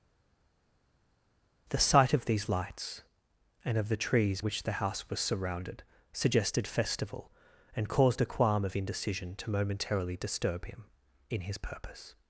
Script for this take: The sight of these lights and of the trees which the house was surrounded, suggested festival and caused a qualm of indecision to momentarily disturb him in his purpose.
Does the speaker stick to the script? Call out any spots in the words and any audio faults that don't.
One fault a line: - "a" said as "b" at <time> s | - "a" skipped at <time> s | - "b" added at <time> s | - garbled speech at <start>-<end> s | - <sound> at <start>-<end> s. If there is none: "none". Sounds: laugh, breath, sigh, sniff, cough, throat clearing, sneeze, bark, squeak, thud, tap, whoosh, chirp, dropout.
none